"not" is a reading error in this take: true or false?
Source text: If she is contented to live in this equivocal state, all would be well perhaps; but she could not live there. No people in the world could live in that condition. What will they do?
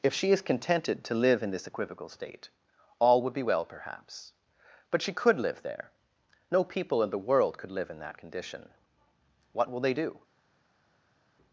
true